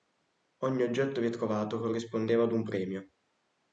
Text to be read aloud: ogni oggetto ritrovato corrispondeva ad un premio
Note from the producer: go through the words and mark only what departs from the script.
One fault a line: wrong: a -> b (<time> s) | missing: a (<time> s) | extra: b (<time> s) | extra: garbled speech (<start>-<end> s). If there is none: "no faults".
no faults